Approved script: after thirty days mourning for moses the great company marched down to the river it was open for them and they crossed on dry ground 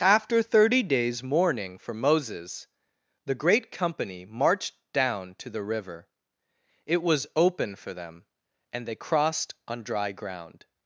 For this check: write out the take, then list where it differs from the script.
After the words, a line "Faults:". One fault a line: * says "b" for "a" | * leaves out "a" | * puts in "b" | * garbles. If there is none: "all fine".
after thirty days mourning for moses the great company marched down to the river it was open for them and they crossed on dry ground
Faults:
all fine